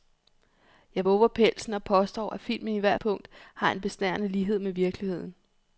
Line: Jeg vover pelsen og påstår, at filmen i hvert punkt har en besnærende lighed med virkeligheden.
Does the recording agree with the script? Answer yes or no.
yes